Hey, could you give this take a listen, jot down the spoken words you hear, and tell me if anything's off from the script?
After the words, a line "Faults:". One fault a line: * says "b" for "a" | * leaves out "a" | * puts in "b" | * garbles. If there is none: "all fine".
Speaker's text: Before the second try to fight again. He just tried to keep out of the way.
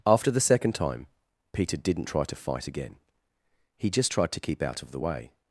After the second time Peter didn't try to fight again. He just tried to keep out of the way.
Faults:
* says "After" for "Before"
* puts in "time Peter didn't"